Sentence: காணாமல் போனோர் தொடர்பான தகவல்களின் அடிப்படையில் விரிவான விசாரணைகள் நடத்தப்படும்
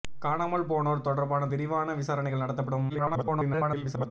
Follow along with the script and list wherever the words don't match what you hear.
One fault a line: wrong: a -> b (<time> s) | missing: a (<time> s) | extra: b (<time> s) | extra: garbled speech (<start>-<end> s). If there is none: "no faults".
missing: தகவல்களின் அடிப்படையில் (1.5 s)
extra: garbled speech (2.9-4.1 s)